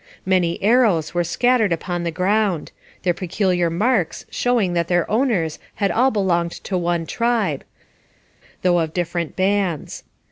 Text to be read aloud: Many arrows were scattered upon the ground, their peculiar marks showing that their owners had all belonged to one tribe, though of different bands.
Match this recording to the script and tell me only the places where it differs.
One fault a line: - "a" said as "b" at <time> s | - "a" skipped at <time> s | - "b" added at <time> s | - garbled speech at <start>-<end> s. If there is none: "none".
none